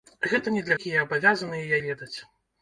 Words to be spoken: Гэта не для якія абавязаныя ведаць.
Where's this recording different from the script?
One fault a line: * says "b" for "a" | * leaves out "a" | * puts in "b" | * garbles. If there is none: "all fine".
all fine